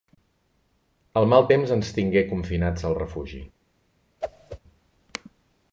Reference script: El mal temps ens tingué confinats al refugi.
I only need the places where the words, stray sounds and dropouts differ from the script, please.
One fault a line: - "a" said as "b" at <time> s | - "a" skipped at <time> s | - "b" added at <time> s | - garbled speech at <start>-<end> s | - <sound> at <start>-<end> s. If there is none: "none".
- whoosh at 4.2-4.6 s